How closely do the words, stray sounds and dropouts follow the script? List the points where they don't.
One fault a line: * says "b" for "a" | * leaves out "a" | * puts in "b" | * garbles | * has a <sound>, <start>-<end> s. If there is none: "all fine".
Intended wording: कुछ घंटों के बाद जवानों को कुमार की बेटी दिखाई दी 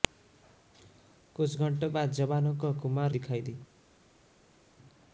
* leaves out "के"
* leaves out "की बेटी"